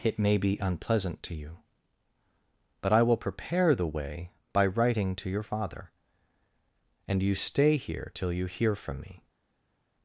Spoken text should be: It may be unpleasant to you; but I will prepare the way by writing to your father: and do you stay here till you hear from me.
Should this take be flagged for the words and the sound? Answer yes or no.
yes